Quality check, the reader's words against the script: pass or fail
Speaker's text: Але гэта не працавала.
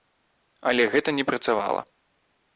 pass